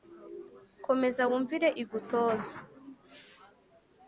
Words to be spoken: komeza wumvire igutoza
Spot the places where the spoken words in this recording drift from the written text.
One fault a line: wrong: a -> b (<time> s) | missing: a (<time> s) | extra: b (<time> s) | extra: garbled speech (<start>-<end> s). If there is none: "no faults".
no faults